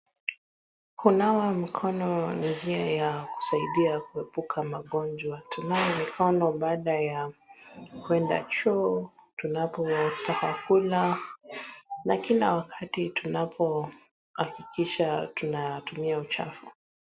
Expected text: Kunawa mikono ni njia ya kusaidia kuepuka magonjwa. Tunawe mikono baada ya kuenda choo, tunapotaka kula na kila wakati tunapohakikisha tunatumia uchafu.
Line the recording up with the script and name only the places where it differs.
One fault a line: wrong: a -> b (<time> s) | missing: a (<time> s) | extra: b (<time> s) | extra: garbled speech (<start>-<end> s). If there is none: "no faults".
no faults